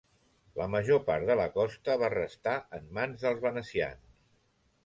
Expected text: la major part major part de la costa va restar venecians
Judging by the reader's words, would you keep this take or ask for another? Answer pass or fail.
fail